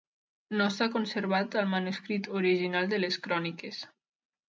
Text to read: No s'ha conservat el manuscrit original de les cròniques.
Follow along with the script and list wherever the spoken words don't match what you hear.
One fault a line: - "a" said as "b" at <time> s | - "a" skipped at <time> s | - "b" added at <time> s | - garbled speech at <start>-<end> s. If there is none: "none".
none